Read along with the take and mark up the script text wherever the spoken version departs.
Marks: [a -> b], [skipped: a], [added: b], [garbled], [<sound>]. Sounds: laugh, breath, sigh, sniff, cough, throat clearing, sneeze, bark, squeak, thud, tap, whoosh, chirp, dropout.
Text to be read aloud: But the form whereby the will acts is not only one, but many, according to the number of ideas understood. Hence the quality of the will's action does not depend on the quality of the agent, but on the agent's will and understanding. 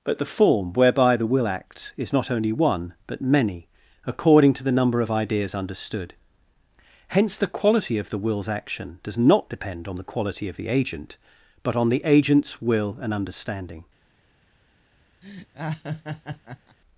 But the form whereby the will acts is not only one, but many, according to the number of ideas understood. Hence the quality of the will's action does not depend on the quality of the agent, but on the agent's will and understanding. [laugh]